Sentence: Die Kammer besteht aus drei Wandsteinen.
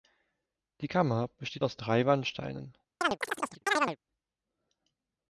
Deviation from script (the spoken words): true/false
false